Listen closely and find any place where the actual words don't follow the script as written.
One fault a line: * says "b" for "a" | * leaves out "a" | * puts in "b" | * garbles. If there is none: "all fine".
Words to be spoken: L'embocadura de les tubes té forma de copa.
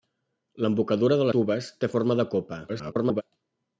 * leaves out "les"
* garbles